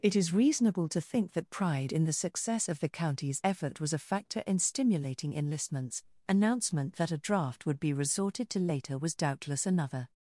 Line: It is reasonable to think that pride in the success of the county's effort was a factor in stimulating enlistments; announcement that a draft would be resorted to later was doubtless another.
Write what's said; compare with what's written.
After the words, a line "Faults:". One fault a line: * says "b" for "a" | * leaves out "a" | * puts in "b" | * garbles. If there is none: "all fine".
It is reasonable to think that pride in the success of the county's effort was a factor in stimulating enlistments; announcement that a draft would be resorted to later was doubtless another.
Faults:
all fine